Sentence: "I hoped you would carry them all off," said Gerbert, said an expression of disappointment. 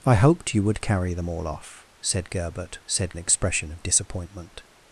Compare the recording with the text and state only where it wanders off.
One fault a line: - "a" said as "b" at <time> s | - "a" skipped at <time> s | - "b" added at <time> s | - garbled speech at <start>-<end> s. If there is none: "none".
none